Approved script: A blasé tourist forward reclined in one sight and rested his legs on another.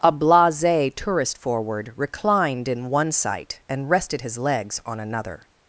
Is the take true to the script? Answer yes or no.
yes